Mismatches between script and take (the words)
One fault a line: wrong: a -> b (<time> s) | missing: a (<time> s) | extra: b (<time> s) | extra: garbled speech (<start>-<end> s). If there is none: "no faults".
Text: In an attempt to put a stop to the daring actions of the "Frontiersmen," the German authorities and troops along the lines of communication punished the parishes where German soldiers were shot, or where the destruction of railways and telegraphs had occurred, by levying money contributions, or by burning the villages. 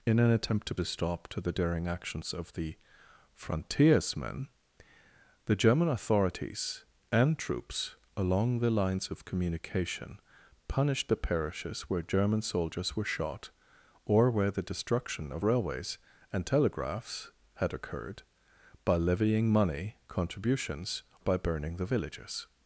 missing: put (0.8 s)
missing: or (21.0 s)